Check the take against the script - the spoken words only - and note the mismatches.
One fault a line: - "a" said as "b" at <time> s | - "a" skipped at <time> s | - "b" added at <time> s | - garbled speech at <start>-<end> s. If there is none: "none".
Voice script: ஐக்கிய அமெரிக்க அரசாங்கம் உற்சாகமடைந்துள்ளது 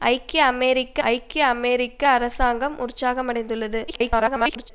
- "ஐக்கிய அமெரிக்க" added at 1.1 s
- garbled speech at 3.9-4.7 s